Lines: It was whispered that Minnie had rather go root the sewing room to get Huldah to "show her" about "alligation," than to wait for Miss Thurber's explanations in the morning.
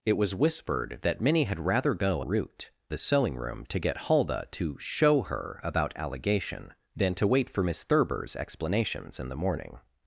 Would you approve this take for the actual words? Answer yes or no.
yes